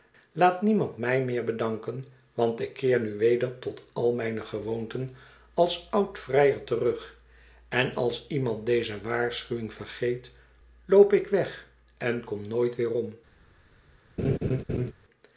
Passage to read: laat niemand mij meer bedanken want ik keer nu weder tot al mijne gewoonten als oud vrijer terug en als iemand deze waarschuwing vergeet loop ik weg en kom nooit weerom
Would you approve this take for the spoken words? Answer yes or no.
yes